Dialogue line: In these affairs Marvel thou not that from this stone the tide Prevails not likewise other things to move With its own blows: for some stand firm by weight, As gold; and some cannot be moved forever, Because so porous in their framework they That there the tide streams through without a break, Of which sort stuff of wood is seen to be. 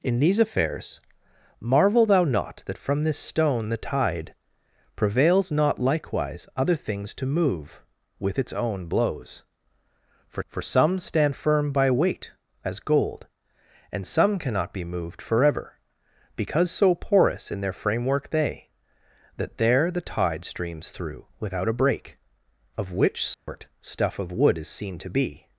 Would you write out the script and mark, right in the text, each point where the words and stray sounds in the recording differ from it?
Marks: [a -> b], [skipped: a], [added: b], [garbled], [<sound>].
In these affairs Marvel thou not that from this stone the tide Prevails not likewise other things to move With its own blows: for [added: for] some stand firm by weight, As gold; and some cannot be moved forever, Because so porous in their framework they That there the tide streams through without a break, Of which sort [dropout] stuff of wood is seen to be.